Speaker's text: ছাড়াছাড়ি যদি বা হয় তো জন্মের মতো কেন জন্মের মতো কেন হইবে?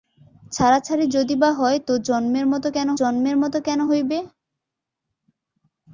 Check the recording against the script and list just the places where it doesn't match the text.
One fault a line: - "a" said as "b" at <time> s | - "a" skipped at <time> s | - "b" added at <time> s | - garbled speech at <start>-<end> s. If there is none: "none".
none